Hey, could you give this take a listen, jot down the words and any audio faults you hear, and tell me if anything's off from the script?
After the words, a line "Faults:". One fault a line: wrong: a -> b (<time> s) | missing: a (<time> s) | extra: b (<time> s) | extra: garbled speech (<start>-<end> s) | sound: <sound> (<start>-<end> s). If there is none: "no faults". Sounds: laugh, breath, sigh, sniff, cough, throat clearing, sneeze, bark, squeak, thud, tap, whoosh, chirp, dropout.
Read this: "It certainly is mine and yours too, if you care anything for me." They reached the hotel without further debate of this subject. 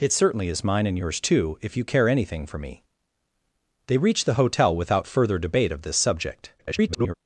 "It certainly is mine and yours too, if you care anything for me." They reached the hotel without further debate of this subject. [garbled]
Faults:
extra: garbled speech (6.6-7.1 s)